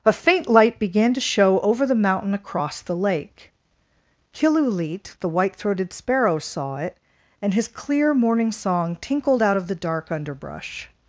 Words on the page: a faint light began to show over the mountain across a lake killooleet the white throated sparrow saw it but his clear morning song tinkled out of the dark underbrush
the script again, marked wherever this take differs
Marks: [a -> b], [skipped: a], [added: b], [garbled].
a faint light began to show over the mountain across [a -> the] lake killooleet the white throated sparrow saw it [but -> and] his clear morning song tinkled out of the dark underbrush